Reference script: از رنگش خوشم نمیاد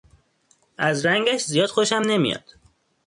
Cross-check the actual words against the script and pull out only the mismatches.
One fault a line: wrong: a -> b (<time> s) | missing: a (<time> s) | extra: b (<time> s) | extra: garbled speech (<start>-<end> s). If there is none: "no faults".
extra: زیاد (1.4 s)